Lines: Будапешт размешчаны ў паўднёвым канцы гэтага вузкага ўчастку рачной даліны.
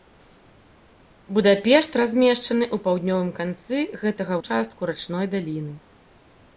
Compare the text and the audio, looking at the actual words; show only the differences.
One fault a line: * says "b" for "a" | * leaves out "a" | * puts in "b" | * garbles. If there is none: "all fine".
* leaves out "вузкага"